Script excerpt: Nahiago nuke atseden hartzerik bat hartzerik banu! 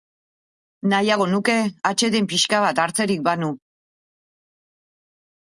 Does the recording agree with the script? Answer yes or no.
no